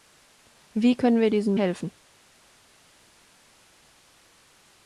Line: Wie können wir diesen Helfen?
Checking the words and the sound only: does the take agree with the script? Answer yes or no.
yes